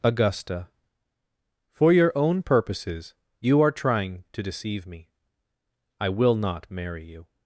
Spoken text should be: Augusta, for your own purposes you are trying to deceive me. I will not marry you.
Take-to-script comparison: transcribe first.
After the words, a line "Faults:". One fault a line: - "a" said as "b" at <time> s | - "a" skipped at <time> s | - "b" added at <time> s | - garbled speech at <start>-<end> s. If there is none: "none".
Augusta, for your own purposes you are trying to deceive me. I will not marry you.
Faults:
none